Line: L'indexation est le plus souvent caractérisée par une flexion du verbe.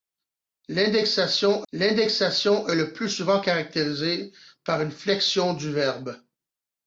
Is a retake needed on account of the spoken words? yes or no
yes